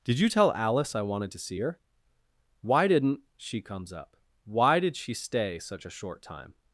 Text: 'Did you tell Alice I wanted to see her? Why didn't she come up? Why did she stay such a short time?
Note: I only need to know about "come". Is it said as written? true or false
false